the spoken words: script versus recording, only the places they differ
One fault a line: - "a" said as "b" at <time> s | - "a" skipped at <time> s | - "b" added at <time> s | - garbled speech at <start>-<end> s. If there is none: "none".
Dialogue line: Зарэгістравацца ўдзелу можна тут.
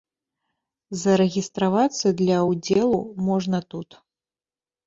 - "для" added at 2.2 s